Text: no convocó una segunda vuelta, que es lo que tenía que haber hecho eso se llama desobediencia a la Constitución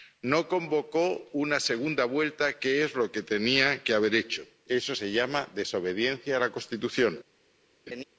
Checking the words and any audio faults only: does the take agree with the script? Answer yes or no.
no